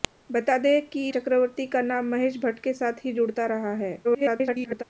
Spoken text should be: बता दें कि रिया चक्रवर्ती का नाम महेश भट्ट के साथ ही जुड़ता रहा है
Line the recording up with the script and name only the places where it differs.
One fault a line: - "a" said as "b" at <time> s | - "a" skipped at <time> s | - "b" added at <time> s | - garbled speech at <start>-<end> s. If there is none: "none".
- "रिया" skipped at 1.1 s
- garbled speech at 4.0-4.8 s